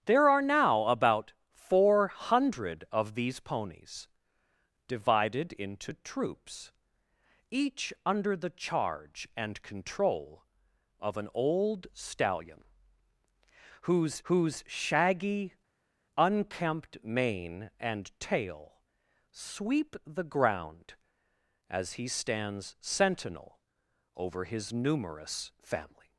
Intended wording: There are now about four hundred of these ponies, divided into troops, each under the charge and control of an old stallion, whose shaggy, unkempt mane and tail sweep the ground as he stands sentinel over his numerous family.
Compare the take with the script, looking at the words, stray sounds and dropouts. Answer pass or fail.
fail